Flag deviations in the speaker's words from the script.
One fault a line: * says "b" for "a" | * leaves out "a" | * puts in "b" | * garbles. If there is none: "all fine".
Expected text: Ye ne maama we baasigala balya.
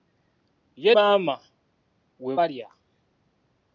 * leaves out "ne"
* leaves out "baasigala"